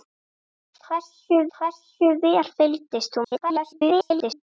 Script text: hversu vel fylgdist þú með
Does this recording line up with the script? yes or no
no